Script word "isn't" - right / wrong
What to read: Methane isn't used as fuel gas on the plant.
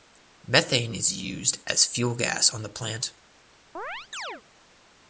wrong